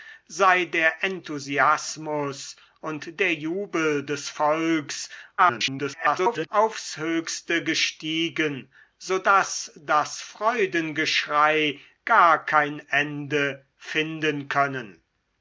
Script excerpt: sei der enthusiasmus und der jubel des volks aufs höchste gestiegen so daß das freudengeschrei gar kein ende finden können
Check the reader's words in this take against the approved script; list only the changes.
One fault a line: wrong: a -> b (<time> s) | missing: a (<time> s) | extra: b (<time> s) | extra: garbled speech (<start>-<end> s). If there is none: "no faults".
extra: garbled speech (5.4-6.5 s)